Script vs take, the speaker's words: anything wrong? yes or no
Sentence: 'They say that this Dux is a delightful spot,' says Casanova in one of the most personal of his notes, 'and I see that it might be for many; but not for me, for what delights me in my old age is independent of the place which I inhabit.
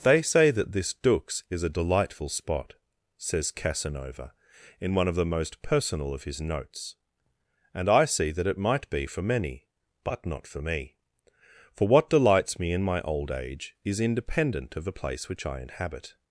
no